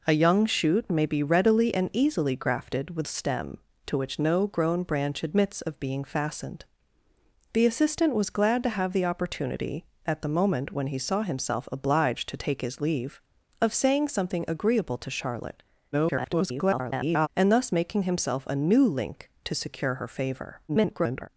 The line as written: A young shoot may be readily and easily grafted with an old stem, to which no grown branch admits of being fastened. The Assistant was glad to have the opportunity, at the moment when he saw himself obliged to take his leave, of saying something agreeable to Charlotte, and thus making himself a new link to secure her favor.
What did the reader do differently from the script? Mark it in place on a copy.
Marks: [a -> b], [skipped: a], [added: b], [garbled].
A young shoot may be readily and easily grafted with [skipped: an old] stem, to which no grown branch admits of being fastened. The Assistant was glad to have the opportunity, at the moment when he saw himself obliged to take his leave, of saying something agreeable to Charlotte, [garbled] and thus making himself a new link to secure her favor. [garbled]